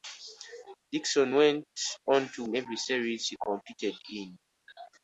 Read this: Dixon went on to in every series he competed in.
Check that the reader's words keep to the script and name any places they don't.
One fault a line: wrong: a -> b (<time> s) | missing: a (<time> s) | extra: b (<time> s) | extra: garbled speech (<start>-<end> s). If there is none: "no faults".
no faults